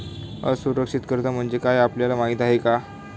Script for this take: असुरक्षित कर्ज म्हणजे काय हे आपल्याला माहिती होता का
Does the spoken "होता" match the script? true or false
false